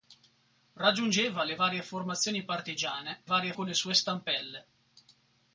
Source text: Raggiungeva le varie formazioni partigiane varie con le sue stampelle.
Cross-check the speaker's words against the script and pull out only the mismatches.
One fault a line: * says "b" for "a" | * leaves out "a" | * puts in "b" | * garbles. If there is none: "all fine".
all fine